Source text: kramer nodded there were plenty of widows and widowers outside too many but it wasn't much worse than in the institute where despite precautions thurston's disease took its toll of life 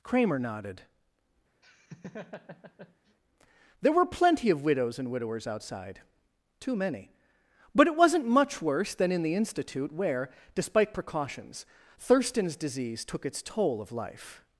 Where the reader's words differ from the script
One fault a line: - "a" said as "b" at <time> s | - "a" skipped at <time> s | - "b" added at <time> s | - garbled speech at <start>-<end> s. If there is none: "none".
none